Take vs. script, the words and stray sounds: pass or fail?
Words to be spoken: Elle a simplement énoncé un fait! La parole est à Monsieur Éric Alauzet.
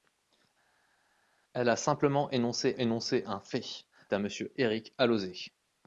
fail